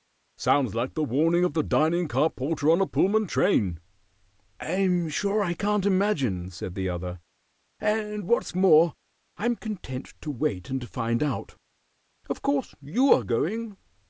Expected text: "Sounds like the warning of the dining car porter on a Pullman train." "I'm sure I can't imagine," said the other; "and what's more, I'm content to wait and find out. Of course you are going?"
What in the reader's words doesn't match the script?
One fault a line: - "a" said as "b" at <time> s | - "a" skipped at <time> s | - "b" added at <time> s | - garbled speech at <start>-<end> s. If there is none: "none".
none